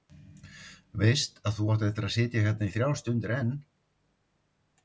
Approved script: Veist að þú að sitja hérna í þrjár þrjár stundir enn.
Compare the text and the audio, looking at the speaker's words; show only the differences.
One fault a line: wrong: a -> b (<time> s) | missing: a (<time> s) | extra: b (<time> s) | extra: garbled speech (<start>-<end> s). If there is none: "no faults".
extra: átt eftir (1.7 s)
missing: þrjár (3.0 s)